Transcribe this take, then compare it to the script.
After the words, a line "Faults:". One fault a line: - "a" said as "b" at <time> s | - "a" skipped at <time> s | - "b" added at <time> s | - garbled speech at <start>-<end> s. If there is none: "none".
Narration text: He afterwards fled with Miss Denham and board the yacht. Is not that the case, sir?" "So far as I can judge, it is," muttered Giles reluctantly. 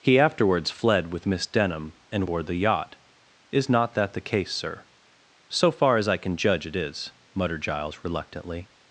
He afterwards fled with Miss Denham and board the yacht. Is not that the case, sir?" "So far as I can judge, it is," muttered Giles reluctantly.
Faults:
none